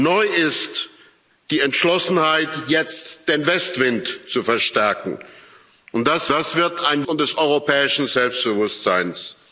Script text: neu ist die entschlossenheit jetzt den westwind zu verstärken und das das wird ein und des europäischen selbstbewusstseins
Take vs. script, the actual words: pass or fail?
pass